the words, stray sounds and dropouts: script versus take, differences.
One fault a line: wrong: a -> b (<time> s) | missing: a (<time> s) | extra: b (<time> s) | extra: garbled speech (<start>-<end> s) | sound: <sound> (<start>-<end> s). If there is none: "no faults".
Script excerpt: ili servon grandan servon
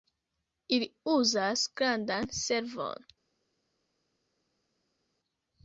wrong: servon -> uzas (1.2 s)